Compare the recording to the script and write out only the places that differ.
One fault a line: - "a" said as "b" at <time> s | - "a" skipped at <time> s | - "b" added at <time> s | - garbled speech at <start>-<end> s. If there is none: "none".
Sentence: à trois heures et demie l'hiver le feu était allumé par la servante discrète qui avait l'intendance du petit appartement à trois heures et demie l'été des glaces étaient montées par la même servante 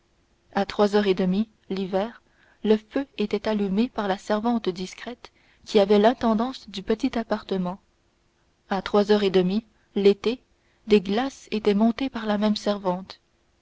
none